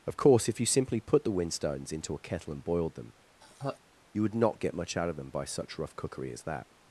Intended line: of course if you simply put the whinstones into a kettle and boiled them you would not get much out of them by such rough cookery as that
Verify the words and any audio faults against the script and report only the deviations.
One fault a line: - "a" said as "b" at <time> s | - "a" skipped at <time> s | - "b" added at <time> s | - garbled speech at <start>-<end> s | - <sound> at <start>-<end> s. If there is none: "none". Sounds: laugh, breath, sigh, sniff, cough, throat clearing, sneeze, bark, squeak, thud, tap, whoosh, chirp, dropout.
- laugh at 3.4-3.8 s